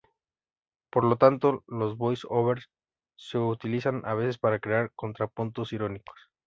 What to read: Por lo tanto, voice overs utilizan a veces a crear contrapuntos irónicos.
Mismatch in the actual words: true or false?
true